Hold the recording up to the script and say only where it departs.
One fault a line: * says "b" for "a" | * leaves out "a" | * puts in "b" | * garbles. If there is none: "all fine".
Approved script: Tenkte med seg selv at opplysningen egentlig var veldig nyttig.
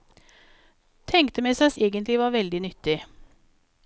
* leaves out "selv at opplysningen"